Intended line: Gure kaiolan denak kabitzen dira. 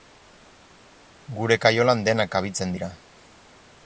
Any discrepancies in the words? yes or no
no